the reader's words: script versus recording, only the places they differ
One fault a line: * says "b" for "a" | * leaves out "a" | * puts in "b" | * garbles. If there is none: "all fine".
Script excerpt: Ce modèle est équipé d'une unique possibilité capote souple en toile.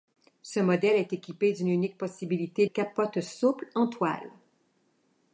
all fine